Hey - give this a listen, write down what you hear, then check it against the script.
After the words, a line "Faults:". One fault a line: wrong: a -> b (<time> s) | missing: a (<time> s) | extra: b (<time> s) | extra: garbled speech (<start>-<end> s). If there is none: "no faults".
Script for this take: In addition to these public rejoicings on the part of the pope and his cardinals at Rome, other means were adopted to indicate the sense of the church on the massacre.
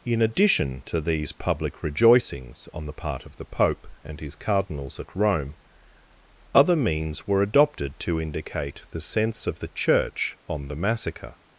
In addition to these public rejoicings on the part of the pope and his cardinals at Rome, other means were adopted to indicate the sense of the church on the massacre.
Faults:
no faults